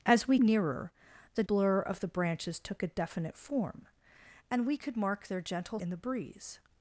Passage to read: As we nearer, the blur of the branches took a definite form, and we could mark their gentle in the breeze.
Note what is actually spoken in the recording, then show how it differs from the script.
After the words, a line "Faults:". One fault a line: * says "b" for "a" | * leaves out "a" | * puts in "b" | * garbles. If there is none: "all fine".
As we nearer, the blur of the branches took a definite form, and we could mark their gentle in the breeze.
Faults:
all fine